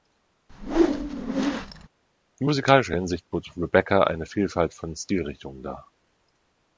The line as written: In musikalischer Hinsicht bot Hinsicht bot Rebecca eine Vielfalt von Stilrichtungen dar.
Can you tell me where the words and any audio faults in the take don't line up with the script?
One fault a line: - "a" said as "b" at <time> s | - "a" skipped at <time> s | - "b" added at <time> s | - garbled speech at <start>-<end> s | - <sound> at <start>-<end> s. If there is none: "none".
- whoosh at 0.5-1.9 s
- "Hinsicht bot" skipped at 3.5 s